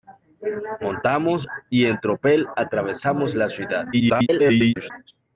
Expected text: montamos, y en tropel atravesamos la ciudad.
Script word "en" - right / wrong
right